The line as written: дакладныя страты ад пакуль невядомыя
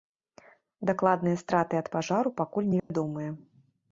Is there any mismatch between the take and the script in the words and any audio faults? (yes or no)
yes